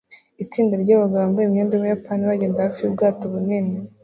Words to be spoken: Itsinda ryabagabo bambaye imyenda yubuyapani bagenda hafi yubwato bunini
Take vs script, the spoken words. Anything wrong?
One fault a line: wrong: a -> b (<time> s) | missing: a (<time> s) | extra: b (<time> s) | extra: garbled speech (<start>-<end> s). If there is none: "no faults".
no faults